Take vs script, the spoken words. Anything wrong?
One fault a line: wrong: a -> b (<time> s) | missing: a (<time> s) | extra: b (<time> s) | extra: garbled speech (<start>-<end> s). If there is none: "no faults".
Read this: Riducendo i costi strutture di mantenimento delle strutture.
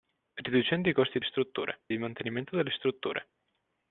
no faults